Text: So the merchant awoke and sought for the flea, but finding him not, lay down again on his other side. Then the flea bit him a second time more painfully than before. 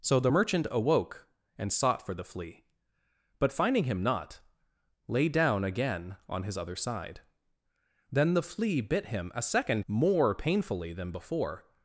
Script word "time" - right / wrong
wrong